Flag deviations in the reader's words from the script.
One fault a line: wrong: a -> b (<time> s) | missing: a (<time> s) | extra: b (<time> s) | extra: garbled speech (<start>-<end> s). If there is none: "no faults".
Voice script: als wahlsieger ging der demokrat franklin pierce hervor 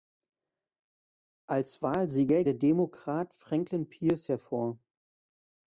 missing: ging (2.4 s)